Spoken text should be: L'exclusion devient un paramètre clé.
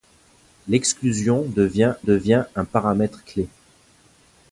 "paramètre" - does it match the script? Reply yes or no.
yes